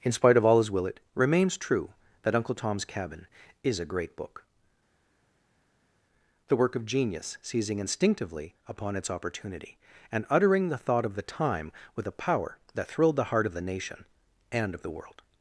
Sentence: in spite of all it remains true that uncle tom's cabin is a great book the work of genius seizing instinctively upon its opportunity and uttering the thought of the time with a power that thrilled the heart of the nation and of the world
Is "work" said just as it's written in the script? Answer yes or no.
yes